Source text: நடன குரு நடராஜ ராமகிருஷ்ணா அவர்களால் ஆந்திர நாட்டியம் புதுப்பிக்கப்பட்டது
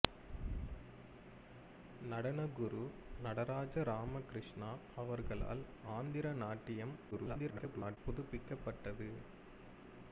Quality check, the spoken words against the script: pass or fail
fail